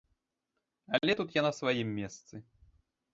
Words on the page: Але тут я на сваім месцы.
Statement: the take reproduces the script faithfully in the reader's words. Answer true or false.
true